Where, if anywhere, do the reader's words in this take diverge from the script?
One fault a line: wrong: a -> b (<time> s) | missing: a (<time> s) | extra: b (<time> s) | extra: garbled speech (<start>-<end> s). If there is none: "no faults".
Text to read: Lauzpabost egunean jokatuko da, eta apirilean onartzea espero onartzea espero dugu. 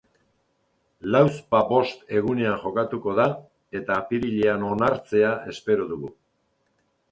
missing: onartzea espero (5.9 s)